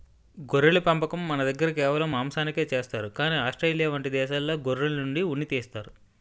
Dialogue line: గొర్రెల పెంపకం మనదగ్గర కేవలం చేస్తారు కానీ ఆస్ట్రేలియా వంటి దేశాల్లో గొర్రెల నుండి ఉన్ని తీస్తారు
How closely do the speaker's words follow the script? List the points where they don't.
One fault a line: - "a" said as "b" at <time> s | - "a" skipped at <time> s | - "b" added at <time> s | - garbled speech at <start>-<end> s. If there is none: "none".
- "మాంసానికే" added at 2.1 s